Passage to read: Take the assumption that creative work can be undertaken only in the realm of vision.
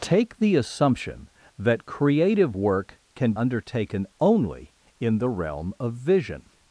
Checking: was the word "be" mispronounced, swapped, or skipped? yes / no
yes